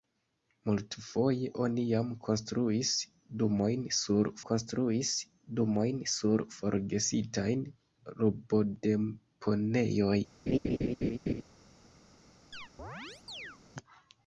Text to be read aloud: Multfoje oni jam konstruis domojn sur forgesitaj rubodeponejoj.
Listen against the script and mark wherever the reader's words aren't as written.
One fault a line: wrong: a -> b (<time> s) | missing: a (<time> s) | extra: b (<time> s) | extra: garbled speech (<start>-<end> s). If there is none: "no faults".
extra: konstruis domojn sur (4.5 s)